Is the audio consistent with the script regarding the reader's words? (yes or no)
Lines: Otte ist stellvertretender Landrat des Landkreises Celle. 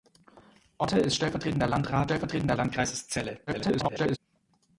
no